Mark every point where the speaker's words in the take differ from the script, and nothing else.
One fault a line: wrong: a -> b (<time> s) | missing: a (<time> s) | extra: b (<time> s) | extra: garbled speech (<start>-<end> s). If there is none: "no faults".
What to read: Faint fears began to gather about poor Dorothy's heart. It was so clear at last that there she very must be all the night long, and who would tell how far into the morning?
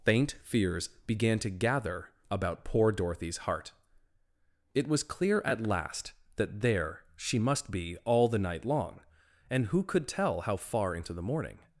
missing: so (5.0 s)
missing: very (7.4 s)
wrong: would -> could (9.8 s)